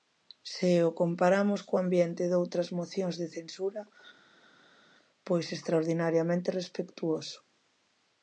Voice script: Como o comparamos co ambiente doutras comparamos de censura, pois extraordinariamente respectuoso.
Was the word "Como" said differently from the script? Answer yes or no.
yes